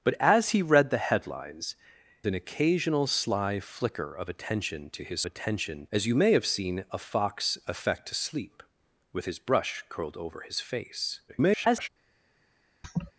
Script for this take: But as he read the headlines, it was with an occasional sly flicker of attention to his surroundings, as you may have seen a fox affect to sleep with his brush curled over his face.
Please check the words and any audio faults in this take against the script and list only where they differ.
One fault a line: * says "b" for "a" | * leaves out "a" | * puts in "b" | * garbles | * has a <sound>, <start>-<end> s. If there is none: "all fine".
* leaves out "it was with"
* says "attention" for "surroundings"
* garbles
* has a laugh, 12.8-13.1 s